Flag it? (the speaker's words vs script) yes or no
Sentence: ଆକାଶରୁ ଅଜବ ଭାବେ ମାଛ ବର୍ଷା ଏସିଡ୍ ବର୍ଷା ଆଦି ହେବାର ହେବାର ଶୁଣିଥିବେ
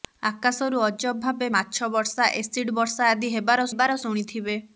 no